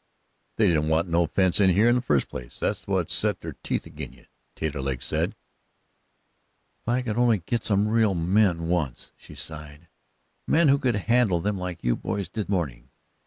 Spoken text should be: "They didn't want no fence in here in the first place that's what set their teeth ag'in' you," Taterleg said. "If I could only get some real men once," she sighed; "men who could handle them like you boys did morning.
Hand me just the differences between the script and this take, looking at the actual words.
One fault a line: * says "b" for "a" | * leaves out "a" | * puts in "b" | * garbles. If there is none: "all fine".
all fine